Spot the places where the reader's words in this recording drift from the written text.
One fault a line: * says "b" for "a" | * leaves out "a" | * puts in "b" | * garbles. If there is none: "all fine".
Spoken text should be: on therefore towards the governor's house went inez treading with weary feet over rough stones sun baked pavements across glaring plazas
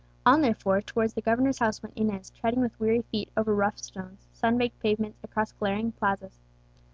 all fine